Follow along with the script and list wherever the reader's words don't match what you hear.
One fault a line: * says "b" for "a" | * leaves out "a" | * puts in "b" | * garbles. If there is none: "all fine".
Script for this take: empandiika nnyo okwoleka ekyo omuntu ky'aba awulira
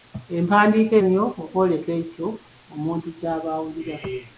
all fine